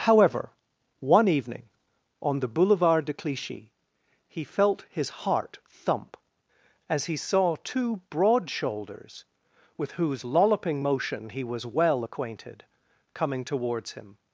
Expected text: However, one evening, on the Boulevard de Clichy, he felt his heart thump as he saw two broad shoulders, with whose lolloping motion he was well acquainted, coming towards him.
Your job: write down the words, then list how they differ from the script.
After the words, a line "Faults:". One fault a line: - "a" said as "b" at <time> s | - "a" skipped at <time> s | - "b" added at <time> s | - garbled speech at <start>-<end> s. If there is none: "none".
However, one evening, on the Boulevard de Clichy, he felt his heart thump as he saw two broad shoulders, with whose lolloping motion he was well acquainted, coming towards him.
Faults:
none